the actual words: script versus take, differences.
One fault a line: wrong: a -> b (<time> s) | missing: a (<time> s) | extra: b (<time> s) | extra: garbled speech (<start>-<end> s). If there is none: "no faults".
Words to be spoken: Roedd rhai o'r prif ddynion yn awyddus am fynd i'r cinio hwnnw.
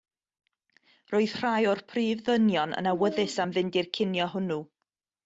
no faults